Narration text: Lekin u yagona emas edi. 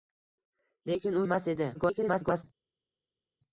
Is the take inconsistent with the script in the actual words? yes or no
yes